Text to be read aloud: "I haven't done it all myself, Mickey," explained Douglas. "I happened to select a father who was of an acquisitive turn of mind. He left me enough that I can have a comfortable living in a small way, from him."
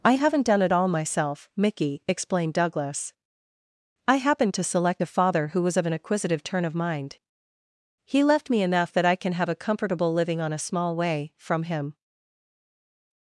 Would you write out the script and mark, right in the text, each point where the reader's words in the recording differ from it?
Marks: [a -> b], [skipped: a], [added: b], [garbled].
"I haven't done it all myself, Mickey," explained Douglas. "I happened to select a father who was of an acquisitive turn of mind. He left me enough that I can have a comfortable living [in -> on] a small way, from him."